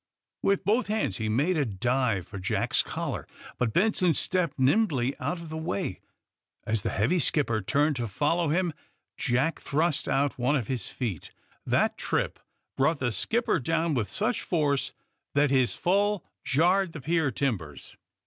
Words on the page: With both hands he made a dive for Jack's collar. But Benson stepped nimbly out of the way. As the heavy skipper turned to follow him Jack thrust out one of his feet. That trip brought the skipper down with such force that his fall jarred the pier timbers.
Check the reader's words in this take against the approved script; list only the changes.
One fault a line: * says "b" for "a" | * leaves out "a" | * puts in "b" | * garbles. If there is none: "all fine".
all fine